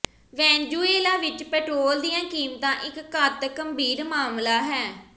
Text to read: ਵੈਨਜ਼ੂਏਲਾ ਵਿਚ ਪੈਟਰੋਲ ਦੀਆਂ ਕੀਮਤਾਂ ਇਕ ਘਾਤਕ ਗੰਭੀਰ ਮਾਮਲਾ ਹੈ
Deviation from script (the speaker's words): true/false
false